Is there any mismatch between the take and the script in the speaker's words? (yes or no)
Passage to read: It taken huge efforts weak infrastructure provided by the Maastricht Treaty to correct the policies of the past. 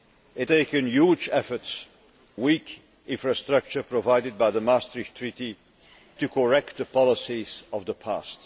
no